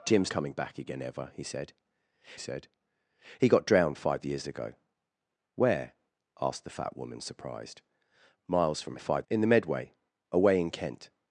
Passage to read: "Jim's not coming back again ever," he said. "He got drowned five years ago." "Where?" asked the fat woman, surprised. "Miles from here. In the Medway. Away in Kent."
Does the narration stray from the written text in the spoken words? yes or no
yes